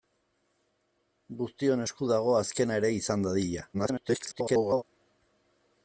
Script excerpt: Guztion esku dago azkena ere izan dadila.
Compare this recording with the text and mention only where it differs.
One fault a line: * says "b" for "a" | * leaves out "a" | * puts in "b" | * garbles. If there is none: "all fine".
* garbles